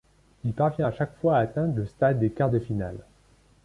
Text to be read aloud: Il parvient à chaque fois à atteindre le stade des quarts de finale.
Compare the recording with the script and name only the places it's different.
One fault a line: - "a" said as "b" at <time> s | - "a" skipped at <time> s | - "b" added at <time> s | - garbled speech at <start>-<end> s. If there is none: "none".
none